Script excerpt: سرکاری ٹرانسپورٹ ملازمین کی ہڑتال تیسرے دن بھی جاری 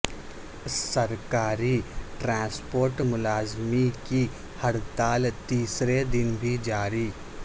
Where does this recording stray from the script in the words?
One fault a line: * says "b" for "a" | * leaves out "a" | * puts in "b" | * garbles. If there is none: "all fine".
all fine